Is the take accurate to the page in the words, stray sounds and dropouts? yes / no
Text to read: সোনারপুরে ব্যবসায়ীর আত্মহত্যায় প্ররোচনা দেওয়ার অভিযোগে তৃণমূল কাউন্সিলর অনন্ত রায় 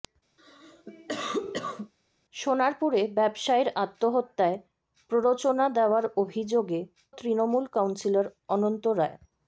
no